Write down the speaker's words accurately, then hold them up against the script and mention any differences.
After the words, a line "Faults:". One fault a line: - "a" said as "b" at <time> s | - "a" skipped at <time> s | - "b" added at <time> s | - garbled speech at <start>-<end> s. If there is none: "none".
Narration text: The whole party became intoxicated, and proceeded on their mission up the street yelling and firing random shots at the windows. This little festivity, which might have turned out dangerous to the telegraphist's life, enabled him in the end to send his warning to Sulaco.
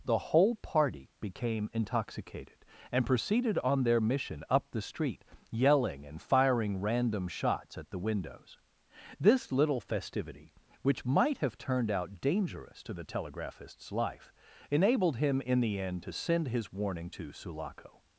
The whole party became intoxicated, and proceeded on their mission up the street yelling and firing random shots at the windows. This little festivity, which might have turned out dangerous to the telegraphist's life, enabled him in the end to send his warning to Sulaco.
Faults:
none